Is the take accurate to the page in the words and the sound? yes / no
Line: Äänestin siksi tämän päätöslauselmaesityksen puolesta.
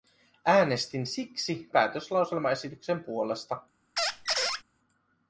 no